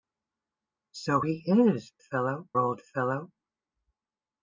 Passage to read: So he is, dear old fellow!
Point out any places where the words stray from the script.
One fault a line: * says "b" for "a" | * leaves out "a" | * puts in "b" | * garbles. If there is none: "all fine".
* says "fellow" for "dear"